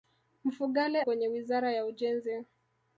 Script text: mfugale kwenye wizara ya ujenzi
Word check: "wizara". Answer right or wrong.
right